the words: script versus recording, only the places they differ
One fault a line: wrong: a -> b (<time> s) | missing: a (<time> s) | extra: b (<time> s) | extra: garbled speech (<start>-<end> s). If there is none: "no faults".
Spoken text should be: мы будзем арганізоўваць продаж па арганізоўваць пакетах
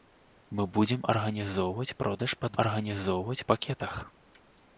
no faults